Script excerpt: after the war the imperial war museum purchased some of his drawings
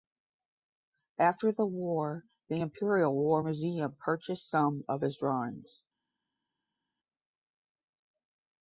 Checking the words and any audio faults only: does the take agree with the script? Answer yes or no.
yes